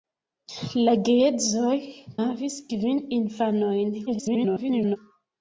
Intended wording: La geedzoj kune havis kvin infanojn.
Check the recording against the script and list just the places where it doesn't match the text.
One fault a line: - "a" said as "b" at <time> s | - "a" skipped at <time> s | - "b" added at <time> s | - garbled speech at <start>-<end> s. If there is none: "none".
- "kune" skipped at 1.8 s
- garbled speech at 4.1-5.0 s